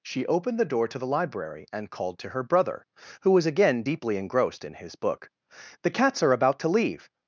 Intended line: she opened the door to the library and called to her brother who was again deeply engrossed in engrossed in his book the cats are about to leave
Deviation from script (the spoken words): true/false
true